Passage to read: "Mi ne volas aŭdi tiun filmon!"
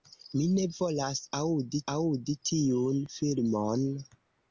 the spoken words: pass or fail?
fail